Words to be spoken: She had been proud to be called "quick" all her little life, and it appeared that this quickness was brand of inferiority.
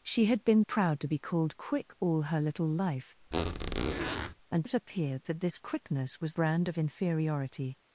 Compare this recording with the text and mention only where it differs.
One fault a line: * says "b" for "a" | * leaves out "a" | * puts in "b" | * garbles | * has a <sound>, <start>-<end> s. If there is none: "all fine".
* has a squeak, 3.3-4.3 s